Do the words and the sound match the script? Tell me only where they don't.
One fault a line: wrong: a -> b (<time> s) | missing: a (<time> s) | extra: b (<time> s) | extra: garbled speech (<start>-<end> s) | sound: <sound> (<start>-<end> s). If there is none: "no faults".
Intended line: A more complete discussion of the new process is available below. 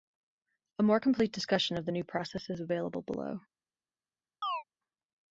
sound: chirp (4.4-4.6 s)